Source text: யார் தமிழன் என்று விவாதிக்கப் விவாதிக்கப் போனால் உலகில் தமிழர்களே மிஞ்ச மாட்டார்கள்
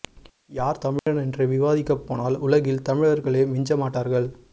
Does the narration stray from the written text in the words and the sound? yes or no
yes